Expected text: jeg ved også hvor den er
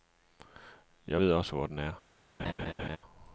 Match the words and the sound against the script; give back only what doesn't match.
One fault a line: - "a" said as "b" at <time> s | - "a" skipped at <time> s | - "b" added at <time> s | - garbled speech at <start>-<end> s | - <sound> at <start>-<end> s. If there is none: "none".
- laugh at 2.4-3.0 s